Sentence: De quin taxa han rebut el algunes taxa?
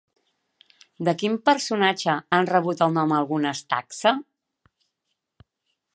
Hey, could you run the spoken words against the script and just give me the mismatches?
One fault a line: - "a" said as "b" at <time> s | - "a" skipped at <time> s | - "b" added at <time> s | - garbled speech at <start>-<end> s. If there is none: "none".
- "taxa" said as "personatge" at 1.5 s
- "nom" added at 3.0 s